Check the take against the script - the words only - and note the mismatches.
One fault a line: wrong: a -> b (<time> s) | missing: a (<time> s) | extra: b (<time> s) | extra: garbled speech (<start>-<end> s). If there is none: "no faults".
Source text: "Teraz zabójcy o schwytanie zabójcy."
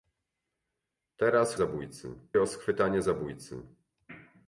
no faults